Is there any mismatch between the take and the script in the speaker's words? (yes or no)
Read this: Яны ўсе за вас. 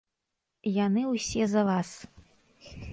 no